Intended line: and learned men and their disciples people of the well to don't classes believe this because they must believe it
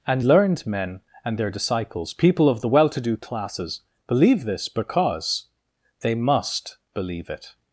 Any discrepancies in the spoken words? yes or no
yes